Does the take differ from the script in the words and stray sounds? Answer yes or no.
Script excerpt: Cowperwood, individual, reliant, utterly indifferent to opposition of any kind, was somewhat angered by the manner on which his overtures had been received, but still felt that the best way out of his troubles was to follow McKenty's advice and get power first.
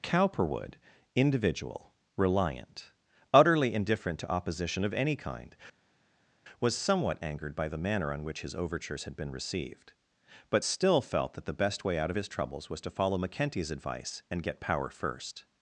no